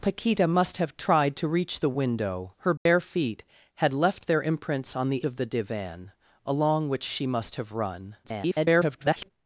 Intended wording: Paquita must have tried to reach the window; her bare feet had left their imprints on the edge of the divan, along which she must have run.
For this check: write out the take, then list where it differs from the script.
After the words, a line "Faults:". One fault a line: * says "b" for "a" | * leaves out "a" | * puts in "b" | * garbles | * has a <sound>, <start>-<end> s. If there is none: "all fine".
Paquita must have tried to reach the window; her bare feet had left their imprints on the of the divan, along which she must have run. [garbled]
Faults:
* has a dropout, 2.8-2.9 s
* leaves out "edge"
* garbles